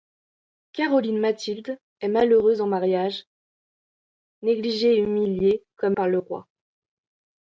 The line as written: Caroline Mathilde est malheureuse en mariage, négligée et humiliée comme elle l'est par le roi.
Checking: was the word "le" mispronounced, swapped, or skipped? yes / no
no